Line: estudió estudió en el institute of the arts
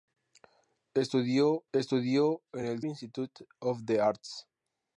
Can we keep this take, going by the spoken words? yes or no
yes